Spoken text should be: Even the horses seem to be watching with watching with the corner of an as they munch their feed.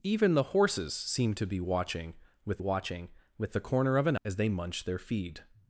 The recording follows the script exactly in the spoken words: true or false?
true